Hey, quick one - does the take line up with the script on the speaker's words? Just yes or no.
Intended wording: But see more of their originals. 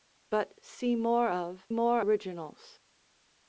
no